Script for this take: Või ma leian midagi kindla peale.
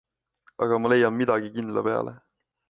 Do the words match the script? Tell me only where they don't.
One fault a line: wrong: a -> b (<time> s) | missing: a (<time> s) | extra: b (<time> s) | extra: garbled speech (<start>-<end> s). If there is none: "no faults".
wrong: Või -> Aga (0.6 s)